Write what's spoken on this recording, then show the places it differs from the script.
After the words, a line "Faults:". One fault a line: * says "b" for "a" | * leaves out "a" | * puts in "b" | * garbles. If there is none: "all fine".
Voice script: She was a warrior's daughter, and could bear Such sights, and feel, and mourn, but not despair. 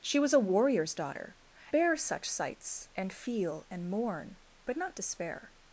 She was a warrior's daughter, bear Such sights, and feel, and mourn, but not despair.
Faults:
* leaves out "and could"